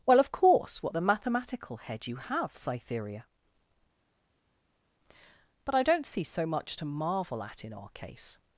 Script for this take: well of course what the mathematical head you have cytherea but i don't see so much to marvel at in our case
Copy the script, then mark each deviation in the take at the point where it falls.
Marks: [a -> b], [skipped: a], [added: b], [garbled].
well of course what the mathematical head you have cytherea but i don't see so much to marvel at in our case